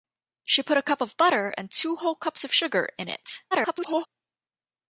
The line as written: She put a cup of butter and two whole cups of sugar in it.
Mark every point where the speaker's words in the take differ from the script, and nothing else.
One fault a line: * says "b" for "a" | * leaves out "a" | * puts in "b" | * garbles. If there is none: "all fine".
* garbles